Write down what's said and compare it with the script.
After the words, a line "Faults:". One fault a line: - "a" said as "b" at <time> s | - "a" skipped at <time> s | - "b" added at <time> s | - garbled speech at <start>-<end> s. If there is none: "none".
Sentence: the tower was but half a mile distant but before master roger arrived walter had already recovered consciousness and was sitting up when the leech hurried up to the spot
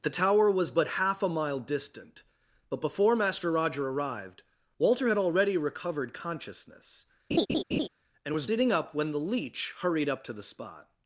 the tower was but half a mile distant but before master roger arrived walter had already recovered consciousness and was sitting up when the leech hurried up to the spot
Faults:
none